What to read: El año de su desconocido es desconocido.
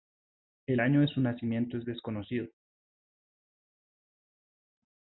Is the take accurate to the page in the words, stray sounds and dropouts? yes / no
no